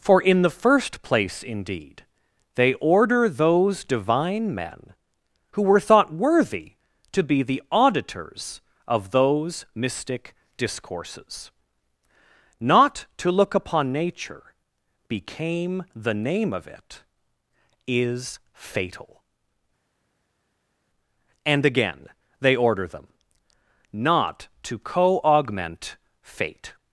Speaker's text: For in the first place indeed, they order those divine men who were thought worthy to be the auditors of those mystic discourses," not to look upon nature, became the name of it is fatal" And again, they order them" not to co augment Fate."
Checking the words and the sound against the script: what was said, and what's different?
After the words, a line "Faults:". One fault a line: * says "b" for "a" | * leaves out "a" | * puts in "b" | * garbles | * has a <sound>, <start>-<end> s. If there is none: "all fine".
For in the first place indeed, they order those divine men who were thought worthy to be the auditors of those mystic discourses," not to look upon nature, became the name of it is fatal" And again, they order them" not to co augment Fate."
Faults:
all fine